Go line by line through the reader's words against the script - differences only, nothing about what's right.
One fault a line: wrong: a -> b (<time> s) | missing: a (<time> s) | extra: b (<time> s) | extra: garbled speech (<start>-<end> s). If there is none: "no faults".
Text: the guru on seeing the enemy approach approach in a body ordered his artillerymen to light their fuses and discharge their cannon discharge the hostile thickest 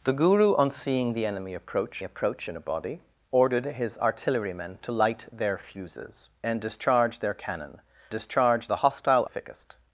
no faults